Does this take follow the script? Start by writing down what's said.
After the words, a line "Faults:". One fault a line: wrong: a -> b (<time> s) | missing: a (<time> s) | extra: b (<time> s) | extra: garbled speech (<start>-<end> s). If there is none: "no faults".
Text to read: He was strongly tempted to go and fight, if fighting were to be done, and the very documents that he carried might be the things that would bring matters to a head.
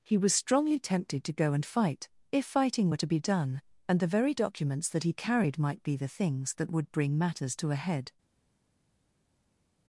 He was strongly tempted to go and fight, if fighting were to be done, and the very documents that he carried might be the things that would bring matters to a head.
Faults:
no faults